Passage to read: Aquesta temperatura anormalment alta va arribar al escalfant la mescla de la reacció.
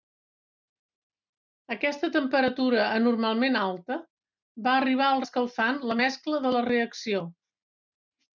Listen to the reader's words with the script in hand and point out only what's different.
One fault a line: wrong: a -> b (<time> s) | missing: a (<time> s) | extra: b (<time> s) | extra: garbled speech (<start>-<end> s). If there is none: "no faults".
no faults